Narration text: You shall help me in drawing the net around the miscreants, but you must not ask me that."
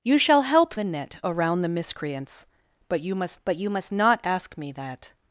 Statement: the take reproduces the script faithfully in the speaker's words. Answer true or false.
false